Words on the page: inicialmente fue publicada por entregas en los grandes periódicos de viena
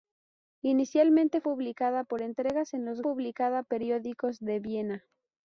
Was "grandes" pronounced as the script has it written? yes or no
no